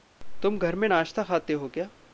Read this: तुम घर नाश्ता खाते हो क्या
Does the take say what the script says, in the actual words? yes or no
no